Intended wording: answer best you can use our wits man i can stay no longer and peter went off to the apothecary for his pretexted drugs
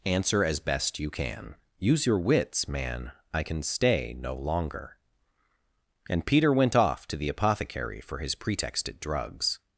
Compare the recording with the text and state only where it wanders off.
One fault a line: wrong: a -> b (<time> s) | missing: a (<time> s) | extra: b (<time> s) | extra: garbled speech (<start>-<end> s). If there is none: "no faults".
extra: as (0.4 s)
wrong: our -> your (2.0 s)